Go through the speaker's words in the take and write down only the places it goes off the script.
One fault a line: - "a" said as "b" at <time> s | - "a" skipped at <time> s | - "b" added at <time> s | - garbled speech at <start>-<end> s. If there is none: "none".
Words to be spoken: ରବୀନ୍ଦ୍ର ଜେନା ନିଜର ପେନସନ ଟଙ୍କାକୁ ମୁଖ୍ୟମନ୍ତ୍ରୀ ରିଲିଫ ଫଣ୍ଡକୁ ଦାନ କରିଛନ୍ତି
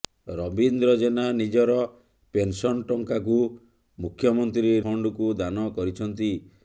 - "ରିଲିଫ" skipped at 4.8 s